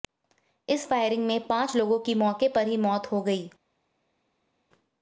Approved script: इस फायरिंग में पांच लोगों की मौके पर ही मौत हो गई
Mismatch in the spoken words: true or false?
false